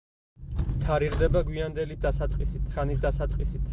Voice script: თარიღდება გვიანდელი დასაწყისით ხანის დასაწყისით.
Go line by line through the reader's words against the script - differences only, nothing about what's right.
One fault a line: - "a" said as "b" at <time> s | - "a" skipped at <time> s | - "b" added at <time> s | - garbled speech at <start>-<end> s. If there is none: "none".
none